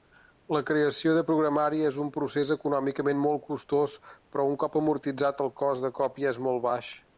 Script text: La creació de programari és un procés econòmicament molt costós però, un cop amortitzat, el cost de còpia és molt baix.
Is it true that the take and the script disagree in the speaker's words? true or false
false